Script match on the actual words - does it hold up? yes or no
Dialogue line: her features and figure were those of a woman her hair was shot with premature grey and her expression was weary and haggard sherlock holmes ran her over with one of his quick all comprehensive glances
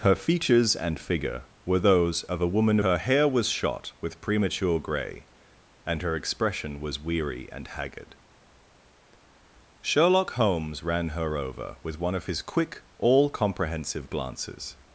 yes